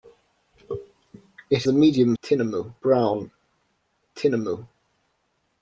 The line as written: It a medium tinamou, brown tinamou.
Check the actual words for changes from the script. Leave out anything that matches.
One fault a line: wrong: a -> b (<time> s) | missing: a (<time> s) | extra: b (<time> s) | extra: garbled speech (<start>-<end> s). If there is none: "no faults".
no faults